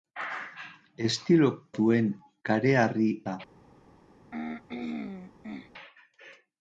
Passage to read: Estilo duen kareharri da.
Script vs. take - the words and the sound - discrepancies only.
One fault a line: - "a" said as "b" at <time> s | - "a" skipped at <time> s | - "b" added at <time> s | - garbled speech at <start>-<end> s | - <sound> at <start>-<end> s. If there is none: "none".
- throat clearing at 4.3-5.7 s